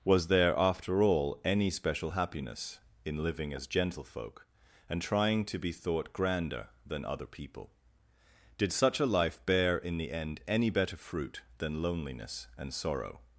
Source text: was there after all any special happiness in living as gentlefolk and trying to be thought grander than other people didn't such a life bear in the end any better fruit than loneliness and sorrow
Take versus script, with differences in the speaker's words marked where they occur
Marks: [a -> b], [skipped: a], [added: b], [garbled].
was there after all any special happiness in living as gentlefolk and trying to be thought grander than other people [didn't -> did] such a life bear in the end any better fruit than loneliness and sorrow